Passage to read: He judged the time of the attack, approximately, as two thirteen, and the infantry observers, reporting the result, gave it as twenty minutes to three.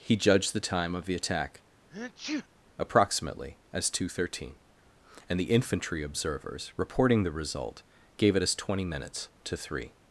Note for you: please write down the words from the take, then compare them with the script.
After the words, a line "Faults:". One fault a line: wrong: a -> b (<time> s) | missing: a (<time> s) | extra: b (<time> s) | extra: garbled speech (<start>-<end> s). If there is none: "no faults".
He judged the time of the attack, approximately, as two thirteen, and the infantry observers, reporting the result, gave it as twenty minutes to three.
Faults:
no faults